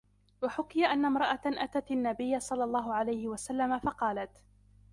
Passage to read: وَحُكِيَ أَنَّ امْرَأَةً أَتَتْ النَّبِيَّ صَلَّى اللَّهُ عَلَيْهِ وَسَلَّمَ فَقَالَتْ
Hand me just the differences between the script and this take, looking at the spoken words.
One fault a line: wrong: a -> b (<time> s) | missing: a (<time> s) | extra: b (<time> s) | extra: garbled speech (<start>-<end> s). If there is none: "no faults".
no faults